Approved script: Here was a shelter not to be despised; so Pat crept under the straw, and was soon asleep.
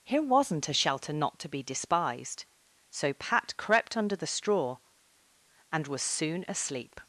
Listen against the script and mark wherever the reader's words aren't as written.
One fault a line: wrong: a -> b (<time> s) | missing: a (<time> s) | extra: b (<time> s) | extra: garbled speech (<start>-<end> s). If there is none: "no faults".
wrong: was -> wasn't (0.2 s)